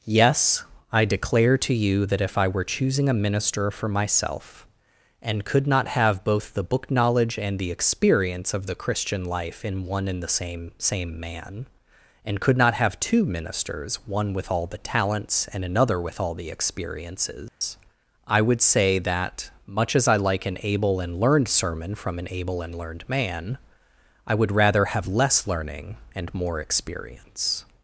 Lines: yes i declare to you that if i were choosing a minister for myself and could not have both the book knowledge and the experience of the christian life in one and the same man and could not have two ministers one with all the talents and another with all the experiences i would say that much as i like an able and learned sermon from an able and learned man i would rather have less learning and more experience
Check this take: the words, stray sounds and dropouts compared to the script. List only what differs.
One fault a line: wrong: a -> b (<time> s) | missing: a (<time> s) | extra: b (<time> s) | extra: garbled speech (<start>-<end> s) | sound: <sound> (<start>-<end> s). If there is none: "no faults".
extra: same (10.8 s)
sound: dropout (17.5-17.6 s)